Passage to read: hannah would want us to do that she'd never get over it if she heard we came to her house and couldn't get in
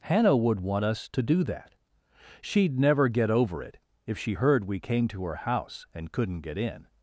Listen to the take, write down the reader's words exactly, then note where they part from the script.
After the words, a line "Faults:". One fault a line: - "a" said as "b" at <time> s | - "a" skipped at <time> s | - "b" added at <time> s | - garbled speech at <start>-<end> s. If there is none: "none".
hannah would want us to do that she'd never get over it if she heard we came to her house and couldn't get in
Faults:
none